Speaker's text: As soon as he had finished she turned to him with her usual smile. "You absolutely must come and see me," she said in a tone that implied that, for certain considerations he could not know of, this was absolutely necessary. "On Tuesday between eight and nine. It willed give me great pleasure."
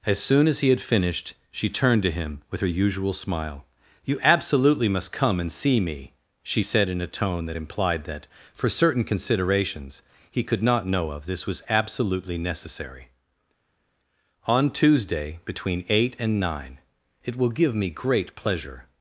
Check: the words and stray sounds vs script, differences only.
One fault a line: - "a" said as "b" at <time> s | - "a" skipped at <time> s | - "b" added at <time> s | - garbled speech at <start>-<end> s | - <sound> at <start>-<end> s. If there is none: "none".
- "willed" said as "will" at 17.4 s